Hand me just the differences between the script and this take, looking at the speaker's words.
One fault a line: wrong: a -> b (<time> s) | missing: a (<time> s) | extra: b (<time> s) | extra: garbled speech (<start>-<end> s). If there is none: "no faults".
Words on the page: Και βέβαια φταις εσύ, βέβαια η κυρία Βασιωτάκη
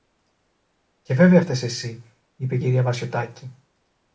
wrong: βέβαια -> είπε (2.3 s)